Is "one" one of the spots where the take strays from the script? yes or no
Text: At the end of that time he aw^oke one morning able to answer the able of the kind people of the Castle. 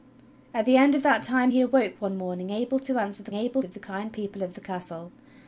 no